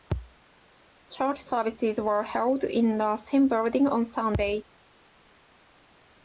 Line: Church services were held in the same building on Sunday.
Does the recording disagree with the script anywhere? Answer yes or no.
no